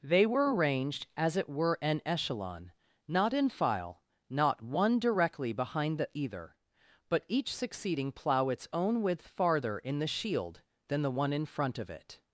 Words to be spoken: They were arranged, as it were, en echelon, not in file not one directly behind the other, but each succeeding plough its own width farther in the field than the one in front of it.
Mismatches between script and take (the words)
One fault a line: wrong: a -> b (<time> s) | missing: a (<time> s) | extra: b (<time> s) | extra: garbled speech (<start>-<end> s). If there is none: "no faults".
wrong: other -> either (6.1 s)
wrong: field -> shield (10.1 s)